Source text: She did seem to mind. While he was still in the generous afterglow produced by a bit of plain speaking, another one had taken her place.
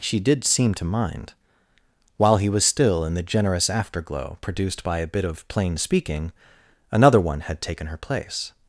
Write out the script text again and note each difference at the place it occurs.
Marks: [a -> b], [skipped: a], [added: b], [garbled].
She did seem to mind. While he was still in the generous afterglow produced by a bit of plain speaking, another one had taken her place.